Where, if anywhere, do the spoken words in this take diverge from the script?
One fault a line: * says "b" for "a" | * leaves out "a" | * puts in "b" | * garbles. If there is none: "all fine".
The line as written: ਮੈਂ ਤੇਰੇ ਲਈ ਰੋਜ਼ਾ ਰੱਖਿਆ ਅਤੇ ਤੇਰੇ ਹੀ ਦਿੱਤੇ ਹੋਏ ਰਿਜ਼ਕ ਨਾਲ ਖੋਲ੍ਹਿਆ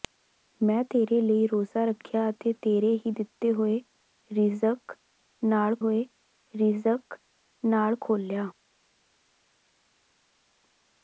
* puts in "ਹੋਏ ਰਿਜ਼ਕ ਨਾਲ"